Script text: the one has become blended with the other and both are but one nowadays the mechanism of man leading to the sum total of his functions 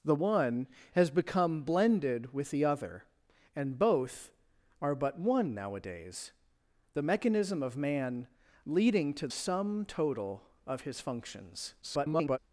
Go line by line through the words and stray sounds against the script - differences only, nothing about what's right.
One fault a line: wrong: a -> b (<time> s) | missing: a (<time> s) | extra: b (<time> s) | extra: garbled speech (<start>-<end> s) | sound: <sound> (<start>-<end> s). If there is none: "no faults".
missing: the (9.3 s)
extra: garbled speech (11.8-12.4 s)